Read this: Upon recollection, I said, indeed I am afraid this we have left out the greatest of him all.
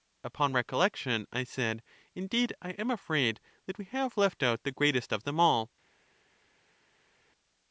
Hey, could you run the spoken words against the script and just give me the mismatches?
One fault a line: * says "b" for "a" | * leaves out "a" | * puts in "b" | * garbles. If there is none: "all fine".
* says "that" for "this"
* says "them" for "him"